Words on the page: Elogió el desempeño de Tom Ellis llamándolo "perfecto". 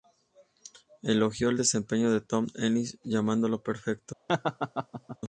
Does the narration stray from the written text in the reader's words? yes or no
no